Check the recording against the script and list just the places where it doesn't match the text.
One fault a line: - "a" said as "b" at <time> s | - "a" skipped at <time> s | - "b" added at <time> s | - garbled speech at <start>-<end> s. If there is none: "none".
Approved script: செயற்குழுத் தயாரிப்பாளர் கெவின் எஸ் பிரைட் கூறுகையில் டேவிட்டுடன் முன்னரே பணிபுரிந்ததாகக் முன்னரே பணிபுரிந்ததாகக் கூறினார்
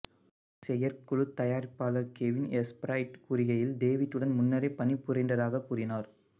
- "முன்னரே பணிபுரிந்ததாகக்" skipped at 5.7 s